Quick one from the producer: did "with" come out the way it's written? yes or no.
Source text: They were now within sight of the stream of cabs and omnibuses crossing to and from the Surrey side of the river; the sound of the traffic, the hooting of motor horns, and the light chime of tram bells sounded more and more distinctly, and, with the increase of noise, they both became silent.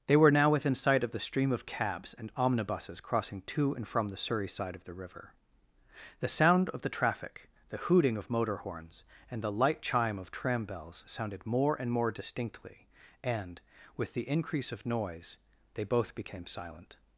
yes